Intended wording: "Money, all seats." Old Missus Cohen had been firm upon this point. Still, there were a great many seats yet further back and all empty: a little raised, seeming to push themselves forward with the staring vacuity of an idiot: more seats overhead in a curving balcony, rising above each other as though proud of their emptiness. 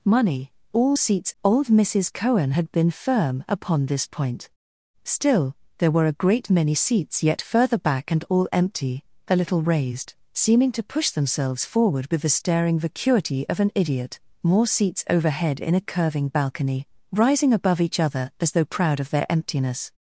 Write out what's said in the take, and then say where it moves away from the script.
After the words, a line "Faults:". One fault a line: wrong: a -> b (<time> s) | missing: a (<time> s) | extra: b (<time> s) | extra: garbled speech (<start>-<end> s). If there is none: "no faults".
"Money, all seats." Old Missus Cohen had been firm upon this point. Still, there were a great many seats yet further back and all empty: a little raised, seeming to push themselves forward with the staring vacuity of an idiot: more seats overhead in a curving balcony, rising above each other as though proud of their emptiness.
Faults:
no faults